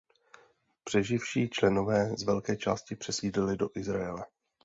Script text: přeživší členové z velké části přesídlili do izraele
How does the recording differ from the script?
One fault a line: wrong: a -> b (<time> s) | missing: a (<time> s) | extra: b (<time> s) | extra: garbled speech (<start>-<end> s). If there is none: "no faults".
no faults